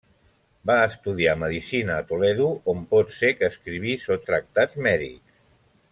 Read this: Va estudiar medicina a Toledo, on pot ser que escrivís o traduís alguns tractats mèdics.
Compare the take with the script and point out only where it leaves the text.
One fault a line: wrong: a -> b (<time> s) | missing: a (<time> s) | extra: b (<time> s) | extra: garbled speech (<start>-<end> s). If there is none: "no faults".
missing: traduís alguns (4.2 s)